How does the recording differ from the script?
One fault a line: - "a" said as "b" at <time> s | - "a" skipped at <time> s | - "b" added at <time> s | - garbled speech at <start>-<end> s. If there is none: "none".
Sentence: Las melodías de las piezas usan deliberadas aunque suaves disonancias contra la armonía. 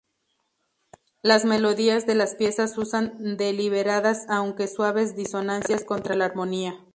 none